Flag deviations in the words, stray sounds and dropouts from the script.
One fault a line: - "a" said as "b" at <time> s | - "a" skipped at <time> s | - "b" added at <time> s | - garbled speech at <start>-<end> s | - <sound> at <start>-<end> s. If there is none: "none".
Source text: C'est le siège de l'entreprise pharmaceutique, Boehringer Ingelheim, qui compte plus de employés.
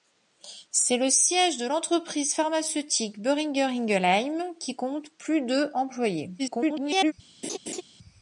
- garbled speech at 6.4-7.1 s
- laugh at 7.4-7.8 s